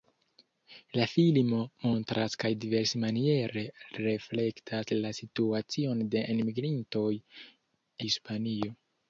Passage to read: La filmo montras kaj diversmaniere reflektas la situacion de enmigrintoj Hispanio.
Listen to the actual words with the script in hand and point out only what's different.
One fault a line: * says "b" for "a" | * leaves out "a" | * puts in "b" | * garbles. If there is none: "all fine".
all fine